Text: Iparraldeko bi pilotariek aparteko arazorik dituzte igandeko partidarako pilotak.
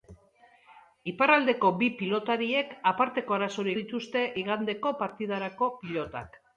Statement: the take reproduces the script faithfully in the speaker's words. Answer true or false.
true